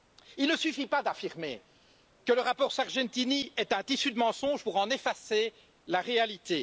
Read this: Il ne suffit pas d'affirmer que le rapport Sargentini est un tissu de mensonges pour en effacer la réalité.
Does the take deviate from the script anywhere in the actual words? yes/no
no